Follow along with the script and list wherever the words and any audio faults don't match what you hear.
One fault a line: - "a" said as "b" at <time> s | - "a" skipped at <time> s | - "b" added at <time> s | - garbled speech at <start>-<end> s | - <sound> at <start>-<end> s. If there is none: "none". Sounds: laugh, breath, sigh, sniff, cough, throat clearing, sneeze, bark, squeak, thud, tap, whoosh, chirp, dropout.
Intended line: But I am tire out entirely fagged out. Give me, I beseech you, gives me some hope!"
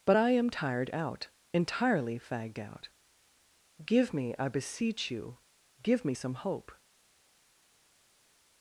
- "tire" said as "tired" at 0.5 s
- "gives" said as "give" at 5.8 s